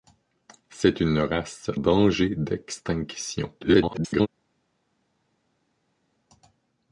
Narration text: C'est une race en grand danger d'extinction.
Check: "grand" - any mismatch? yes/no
yes